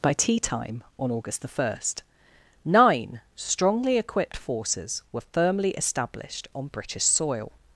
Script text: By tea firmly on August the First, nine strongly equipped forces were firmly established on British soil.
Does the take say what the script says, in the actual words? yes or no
no